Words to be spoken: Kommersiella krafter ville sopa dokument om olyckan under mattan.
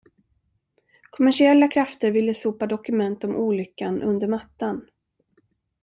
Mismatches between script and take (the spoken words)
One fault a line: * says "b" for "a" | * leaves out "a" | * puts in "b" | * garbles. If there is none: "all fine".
all fine